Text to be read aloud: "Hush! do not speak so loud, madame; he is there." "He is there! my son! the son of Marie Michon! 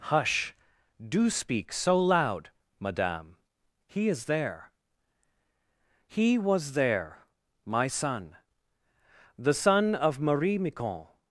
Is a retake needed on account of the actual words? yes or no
yes